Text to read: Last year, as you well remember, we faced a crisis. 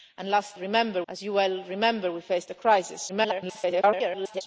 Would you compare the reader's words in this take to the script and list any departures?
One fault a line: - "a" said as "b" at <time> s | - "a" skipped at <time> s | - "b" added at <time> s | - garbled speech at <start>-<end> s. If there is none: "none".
- "year" said as "remember" at 0.6 s
- garbled speech at 3.1-4.4 s